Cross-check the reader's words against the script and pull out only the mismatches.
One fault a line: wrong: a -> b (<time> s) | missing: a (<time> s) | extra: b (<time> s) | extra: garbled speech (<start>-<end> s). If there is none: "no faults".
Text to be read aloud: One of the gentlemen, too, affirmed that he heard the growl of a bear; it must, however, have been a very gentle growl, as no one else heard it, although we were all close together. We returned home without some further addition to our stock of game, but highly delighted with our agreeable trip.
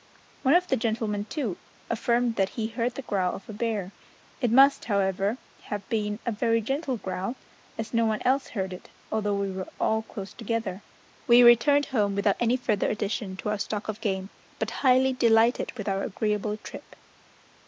wrong: some -> any (12.4 s)